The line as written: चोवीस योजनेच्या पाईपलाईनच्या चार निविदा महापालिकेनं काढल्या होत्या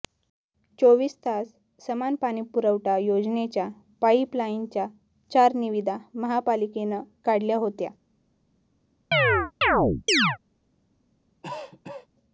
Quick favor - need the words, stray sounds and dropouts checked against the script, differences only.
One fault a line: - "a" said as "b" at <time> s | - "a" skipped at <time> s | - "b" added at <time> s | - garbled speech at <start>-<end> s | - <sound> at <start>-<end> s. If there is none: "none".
- "तास समान पाणीपुरवठा" added at 1.2 s
- chirp at 9.1-10.4 s
- cough at 11.4-12.1 s